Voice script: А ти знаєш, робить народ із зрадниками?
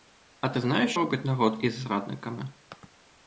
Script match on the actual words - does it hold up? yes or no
yes